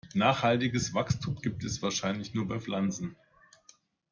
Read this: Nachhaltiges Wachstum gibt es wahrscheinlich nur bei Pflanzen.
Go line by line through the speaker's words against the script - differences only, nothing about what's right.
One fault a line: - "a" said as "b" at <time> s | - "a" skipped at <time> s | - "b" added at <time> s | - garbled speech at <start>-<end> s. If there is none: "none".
none